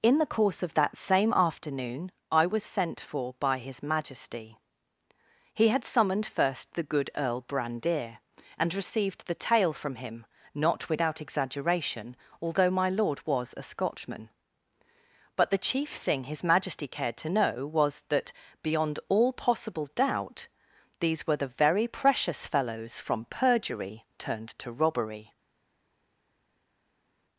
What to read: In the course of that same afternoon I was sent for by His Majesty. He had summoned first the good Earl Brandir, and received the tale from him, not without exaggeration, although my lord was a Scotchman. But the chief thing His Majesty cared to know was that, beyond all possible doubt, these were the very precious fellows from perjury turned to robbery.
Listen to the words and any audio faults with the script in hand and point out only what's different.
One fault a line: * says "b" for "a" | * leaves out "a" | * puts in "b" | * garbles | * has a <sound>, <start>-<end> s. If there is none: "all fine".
all fine